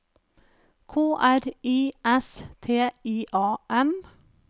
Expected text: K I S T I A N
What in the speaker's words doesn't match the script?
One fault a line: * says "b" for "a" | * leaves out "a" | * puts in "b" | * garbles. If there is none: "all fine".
* puts in "R"